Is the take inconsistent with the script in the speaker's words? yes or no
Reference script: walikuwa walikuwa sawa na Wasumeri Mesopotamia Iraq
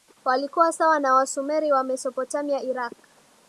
yes